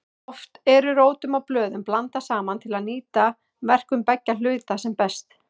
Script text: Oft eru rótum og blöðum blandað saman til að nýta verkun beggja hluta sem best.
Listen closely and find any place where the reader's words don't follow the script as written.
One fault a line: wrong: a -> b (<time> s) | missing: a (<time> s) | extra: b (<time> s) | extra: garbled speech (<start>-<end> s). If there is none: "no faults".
no faults